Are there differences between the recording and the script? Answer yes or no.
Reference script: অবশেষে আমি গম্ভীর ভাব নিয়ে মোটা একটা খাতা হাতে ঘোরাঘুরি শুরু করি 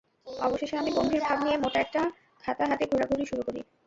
no